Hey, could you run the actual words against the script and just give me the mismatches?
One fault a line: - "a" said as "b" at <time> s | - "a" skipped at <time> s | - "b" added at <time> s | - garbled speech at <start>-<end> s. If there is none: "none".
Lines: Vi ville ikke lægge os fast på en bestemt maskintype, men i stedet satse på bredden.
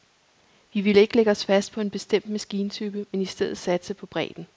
none